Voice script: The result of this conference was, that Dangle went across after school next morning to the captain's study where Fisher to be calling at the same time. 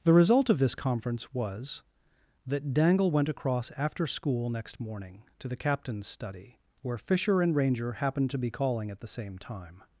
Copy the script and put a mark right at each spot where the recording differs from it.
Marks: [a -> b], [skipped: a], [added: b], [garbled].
The result of this conference was, that Dangle went across after school next morning to the captain's study where Fisher [added: and Ranger happened] to be calling at the same time.